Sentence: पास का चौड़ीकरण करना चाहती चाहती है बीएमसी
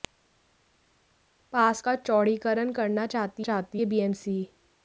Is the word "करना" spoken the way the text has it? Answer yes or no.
yes